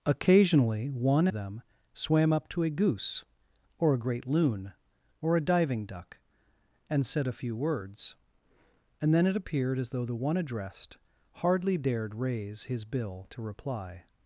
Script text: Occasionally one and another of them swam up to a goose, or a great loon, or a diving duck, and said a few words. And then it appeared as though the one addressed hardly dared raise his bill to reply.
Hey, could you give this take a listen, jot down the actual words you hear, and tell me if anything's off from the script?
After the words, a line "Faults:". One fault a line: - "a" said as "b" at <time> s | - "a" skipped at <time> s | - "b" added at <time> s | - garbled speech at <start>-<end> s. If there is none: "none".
Occasionally one them swam up to a goose, or a great loon, or a diving duck, and said a few words. And then it appeared as though the one addressed hardly dared raise his bill to reply.
Faults:
- "and another of" skipped at 1.3 s